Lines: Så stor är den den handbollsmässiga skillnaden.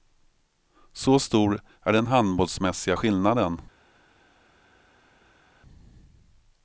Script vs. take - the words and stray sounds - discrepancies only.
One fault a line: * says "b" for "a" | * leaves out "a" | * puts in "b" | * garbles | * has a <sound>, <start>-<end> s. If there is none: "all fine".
* leaves out "den"